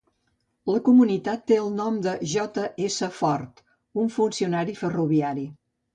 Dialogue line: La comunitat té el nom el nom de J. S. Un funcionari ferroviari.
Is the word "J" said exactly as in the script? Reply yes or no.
yes